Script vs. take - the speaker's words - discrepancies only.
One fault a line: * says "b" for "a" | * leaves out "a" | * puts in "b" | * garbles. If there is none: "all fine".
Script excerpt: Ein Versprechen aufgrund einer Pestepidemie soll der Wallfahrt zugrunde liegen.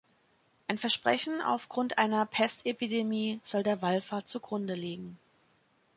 all fine